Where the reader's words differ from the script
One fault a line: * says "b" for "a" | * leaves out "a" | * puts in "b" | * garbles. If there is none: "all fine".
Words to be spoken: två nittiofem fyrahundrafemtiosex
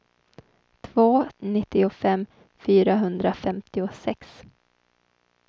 all fine